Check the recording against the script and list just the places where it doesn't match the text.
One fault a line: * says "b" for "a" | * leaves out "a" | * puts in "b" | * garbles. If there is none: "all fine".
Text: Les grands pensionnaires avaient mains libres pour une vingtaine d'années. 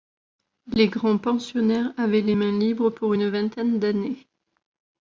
* puts in "les"